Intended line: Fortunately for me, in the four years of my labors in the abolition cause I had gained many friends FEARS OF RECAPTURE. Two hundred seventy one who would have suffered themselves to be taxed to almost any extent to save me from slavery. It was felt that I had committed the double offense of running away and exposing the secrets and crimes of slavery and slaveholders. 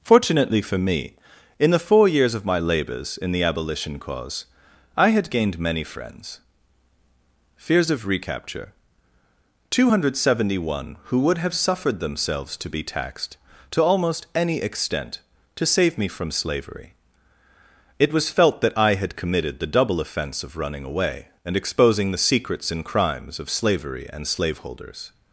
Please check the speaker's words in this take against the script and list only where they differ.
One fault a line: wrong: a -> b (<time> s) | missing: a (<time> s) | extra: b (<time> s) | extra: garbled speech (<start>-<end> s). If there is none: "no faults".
no faults